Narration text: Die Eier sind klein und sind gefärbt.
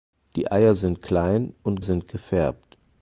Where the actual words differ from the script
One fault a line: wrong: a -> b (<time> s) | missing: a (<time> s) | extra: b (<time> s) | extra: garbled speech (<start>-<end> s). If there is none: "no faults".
no faults